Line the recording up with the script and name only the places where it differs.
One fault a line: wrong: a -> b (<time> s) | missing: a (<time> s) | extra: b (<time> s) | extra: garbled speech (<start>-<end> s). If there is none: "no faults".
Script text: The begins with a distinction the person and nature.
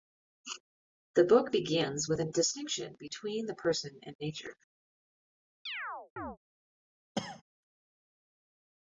extra: book (1.2 s)
extra: between (3.0 s)